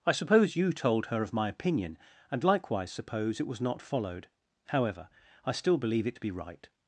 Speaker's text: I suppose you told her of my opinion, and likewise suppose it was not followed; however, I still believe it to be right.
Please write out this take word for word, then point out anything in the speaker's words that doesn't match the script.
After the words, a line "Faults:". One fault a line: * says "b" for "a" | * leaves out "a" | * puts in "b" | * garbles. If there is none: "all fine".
I suppose you told her of my opinion, and likewise suppose it was not followed; however, I still believe it to be right.
Faults:
all fine